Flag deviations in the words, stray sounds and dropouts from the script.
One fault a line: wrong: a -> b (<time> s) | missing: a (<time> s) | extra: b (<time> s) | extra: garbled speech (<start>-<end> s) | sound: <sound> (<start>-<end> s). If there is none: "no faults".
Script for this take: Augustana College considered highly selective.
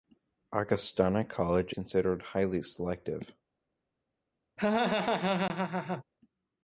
sound: laugh (4.6-6.0 s)